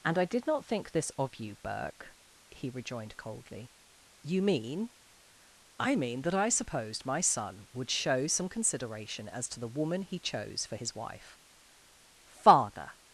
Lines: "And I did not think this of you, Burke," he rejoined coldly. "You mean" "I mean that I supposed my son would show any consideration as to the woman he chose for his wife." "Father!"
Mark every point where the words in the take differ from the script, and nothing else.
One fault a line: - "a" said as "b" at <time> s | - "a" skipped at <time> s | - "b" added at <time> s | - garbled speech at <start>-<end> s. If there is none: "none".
- "any" said as "some" at 8.3 s